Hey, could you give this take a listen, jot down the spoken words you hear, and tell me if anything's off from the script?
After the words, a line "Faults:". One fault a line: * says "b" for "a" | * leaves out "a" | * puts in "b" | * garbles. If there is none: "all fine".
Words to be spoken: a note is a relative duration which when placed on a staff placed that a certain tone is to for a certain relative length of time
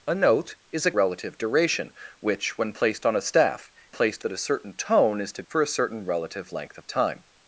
a note is a relative duration which when placed on a staff placed that a certain tone is to for a certain relative length of time
Faults:
all fine